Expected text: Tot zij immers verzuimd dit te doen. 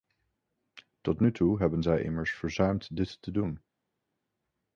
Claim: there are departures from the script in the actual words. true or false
true